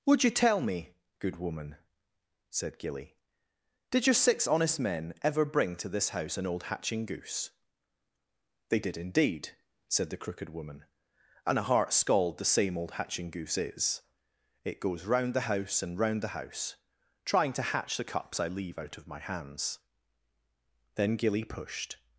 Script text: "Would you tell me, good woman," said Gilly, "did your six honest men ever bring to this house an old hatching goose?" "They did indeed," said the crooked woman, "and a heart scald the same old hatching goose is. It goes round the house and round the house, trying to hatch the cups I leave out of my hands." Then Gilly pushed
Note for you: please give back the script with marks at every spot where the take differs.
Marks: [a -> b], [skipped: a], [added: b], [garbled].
"Would you tell me, good woman," said Gilly, "did your six honest men ever bring to this house an old hatching goose?" "They did indeed," said the crooked woman, "and a heart scald the same old hatching goose is. It goes round the house and round the house, trying to hatch the cups I leave out of my hands." Then Gilly pushed